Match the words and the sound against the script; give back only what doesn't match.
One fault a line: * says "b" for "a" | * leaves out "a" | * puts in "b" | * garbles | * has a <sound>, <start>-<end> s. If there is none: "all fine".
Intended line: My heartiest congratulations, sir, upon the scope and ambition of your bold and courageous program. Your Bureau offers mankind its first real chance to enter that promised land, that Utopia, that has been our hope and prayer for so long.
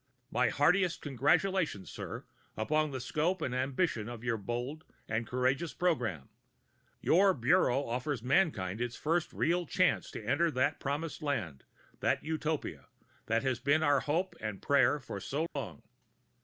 * has a dropout, 15.5-15.6 s